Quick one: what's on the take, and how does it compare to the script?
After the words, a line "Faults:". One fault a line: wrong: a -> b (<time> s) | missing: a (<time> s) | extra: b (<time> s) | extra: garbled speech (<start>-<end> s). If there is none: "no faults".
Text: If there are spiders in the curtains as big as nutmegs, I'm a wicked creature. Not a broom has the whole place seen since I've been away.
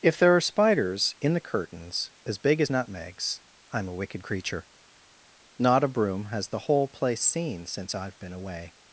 If there are spiders in the curtains as big as nutmegs, I'm a wicked creature. Not a broom has the whole place seen since I've been away.
Faults:
no faults